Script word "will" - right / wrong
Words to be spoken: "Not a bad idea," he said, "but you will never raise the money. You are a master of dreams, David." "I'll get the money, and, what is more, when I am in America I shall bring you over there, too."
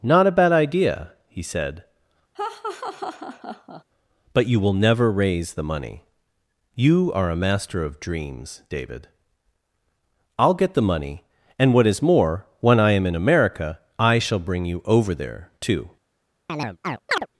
right